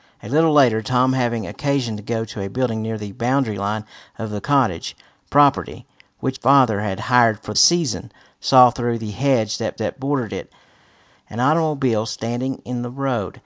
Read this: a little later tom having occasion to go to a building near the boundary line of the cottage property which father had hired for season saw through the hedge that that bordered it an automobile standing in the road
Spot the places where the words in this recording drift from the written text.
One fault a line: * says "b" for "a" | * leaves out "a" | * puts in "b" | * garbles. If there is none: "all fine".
all fine